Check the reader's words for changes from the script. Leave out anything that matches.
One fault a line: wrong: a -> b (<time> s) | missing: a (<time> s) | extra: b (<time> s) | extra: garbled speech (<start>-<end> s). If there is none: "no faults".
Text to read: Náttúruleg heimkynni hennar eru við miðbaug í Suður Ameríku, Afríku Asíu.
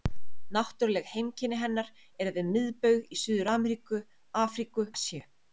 no faults